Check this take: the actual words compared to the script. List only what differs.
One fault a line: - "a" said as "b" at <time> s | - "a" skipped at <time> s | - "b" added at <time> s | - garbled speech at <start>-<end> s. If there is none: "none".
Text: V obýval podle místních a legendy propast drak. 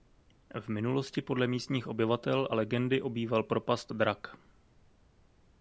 - "obýval" said as "minulosti" at 0.7 s
- "obyvatel" added at 1.9 s
- "obýval" added at 3.0 s